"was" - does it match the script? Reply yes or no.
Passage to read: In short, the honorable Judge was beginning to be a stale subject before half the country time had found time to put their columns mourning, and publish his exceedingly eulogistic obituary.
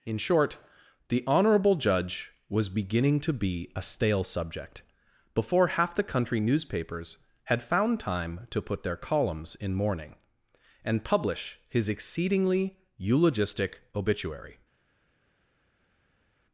yes